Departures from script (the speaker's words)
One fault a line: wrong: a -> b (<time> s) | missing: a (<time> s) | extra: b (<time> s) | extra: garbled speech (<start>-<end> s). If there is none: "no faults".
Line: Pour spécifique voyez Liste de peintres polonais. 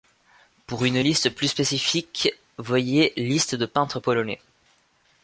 extra: une liste plus (0.8 s)